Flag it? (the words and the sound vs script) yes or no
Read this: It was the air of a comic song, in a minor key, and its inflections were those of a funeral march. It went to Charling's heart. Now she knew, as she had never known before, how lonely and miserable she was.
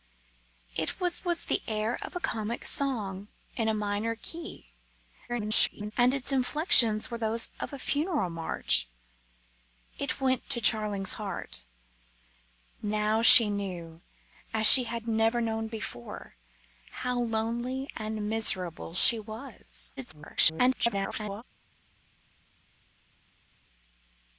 yes